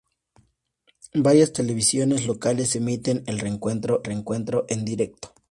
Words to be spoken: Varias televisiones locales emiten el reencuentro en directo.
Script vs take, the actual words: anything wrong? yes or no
yes